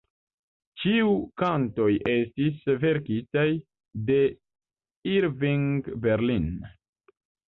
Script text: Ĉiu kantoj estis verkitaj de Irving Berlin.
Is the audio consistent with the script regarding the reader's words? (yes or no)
yes